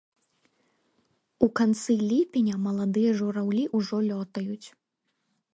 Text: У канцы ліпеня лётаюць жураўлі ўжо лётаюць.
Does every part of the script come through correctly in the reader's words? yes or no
no